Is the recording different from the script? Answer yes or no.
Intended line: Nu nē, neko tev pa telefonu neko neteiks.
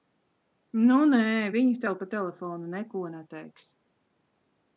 yes